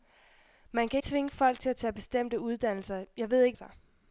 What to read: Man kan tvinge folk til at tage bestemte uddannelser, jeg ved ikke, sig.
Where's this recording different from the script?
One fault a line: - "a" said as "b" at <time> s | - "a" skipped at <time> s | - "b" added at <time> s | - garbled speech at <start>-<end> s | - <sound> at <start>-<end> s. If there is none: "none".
none